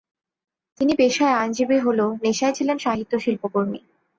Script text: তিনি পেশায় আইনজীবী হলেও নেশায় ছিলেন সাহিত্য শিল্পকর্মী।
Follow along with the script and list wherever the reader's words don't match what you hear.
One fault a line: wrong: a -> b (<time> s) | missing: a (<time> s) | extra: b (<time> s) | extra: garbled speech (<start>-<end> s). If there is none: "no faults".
no faults